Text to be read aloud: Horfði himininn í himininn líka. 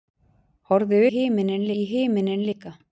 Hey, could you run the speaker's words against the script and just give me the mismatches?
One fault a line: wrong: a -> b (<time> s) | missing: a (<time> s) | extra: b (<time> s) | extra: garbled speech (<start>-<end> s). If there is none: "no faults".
no faults